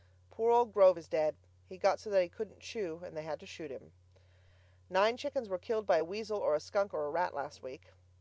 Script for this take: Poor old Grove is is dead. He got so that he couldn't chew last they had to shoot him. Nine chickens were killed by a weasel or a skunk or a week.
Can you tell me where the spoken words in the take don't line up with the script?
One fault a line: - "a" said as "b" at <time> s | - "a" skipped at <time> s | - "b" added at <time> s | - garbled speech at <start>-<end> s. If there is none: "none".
- "is" skipped at 1.1 s
- "last" said as "and" at 3.0 s
- "rat last" added at 7.1 s